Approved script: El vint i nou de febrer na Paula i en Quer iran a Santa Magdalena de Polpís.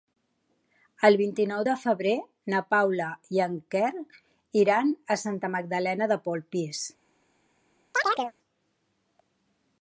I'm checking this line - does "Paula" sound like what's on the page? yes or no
yes